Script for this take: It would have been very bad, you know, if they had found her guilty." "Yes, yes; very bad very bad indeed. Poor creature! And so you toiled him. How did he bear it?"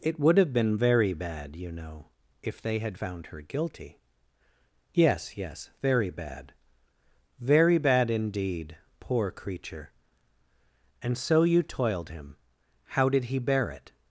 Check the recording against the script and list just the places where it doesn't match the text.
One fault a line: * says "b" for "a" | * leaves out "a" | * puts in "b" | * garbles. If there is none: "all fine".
all fine